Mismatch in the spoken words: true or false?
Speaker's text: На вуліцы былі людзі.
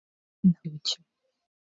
true